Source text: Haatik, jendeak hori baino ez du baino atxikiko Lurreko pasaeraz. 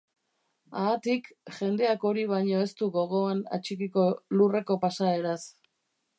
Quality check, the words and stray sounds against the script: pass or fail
fail